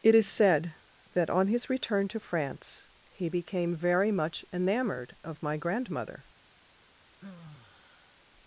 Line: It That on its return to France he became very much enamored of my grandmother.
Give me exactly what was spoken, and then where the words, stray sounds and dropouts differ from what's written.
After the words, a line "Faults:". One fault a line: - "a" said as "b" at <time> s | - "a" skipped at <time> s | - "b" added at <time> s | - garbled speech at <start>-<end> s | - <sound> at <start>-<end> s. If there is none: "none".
It Is said that on his return to France he became very much enamored of my grandmother.
Faults:
- "Is said" added at 0.1 s
- "its" said as "his" at 1.5 s
- sigh at 7.2-8.2 s